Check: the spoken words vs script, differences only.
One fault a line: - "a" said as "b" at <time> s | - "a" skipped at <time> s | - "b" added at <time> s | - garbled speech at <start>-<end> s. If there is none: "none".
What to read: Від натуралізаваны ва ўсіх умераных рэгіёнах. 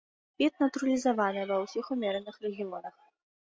none